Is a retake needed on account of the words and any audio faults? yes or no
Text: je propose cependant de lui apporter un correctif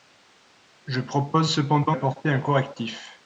yes